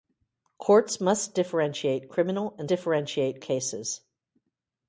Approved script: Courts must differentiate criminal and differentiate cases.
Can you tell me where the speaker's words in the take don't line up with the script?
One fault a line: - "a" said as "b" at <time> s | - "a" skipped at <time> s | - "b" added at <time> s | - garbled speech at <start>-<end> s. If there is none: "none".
none